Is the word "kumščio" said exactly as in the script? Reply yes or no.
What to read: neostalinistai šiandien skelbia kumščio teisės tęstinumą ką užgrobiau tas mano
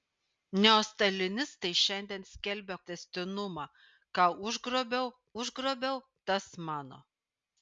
no